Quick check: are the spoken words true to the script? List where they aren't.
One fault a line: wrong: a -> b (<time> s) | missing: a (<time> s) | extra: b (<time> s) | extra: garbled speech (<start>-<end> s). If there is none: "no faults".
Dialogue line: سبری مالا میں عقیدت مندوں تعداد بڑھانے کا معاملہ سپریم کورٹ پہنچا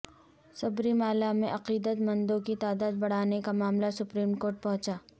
extra: کی (2.4 s)